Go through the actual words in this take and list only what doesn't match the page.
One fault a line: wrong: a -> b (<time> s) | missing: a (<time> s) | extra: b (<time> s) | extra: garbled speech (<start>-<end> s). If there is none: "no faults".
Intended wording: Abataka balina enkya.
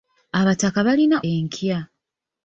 no faults